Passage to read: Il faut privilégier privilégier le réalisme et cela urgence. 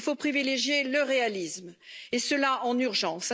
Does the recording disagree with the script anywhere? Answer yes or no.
yes